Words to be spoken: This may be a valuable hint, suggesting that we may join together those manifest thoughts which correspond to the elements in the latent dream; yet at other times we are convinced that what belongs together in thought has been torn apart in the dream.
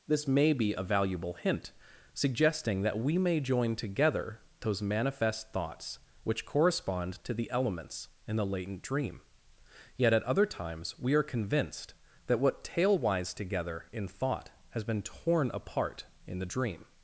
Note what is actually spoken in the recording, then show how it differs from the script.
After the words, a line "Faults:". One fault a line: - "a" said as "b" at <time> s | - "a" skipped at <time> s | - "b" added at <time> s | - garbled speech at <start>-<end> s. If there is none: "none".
This may be a valuable hint, suggesting that we may join together those manifest thoughts which correspond to the elements in the latent dream; yet at other times we are convinced that what tailwise together in thought has been torn apart in the dream.
Faults:
- "belongs" said as "tailwise" at 12.6 s